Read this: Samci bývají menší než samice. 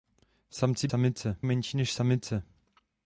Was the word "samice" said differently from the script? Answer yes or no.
no